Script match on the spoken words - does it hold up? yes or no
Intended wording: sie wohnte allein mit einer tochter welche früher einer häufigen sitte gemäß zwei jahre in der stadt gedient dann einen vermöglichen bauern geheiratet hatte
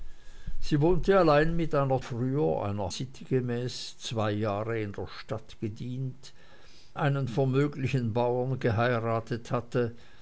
no